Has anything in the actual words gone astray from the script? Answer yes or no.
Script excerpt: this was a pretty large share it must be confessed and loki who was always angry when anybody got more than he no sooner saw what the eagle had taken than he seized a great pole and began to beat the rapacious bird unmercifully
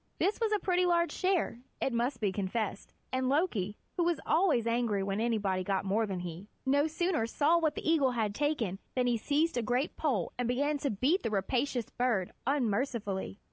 no